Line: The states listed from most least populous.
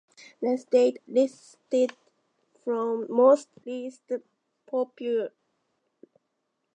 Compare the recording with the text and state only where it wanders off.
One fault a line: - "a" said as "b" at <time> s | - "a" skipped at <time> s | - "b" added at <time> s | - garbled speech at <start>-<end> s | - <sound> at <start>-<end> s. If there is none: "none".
none